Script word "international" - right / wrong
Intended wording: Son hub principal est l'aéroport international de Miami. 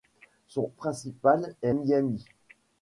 wrong